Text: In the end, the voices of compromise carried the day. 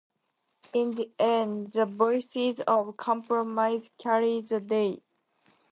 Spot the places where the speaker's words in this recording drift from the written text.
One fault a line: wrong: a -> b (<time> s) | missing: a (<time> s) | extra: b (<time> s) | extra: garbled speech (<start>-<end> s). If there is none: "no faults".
no faults